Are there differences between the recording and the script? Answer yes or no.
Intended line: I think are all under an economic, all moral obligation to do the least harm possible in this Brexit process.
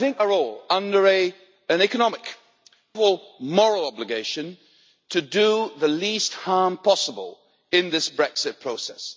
no